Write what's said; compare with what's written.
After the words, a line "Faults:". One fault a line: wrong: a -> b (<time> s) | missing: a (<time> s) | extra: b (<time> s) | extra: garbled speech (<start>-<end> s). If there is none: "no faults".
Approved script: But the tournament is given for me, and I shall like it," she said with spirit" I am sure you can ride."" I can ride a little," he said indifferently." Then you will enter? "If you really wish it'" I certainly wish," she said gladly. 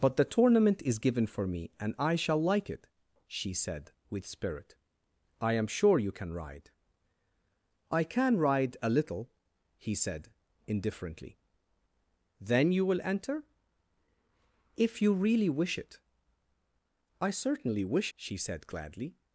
But the tournament is given for me, and I shall like it," she said with spirit" I am sure you can ride."" I can ride a little," he said indifferently." Then you will enter? "If you really wish it'" I certainly wish," she said gladly.
Faults:
no faults